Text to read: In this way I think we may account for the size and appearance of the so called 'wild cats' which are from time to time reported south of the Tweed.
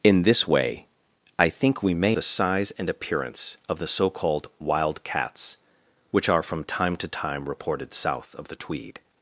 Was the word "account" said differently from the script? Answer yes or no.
yes